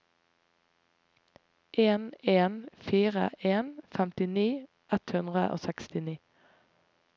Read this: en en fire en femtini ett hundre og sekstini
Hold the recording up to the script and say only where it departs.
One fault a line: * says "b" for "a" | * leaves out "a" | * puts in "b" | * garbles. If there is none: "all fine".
all fine